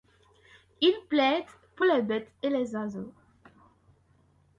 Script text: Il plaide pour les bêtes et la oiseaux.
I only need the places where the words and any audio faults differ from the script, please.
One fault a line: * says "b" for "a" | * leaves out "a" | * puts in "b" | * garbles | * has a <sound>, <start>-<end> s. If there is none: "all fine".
* says "les" for "la"